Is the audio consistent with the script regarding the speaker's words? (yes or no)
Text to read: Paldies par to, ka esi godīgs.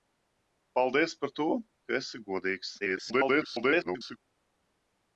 no